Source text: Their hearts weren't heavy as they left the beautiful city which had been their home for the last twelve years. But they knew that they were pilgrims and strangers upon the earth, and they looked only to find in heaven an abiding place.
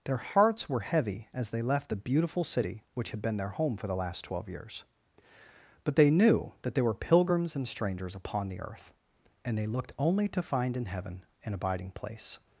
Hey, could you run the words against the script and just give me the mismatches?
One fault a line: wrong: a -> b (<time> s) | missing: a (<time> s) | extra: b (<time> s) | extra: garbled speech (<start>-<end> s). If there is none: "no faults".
wrong: weren't -> were (0.7 s)